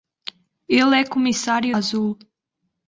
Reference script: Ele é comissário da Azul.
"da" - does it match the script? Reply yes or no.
no